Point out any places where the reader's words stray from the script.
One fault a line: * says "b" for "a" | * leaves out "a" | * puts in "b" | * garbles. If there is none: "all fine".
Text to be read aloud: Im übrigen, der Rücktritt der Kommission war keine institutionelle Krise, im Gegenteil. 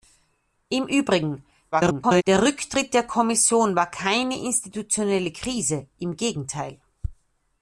* garbles